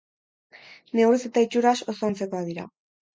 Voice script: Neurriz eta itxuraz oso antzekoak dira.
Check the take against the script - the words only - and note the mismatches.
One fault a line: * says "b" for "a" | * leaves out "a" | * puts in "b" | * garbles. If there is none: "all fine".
all fine